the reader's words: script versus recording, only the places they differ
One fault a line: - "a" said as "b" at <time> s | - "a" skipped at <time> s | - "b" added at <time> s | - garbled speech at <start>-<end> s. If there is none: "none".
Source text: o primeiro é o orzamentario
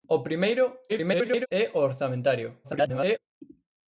- garbled speech at 0.9-1.5 s
- garbled speech at 2.6-3.2 s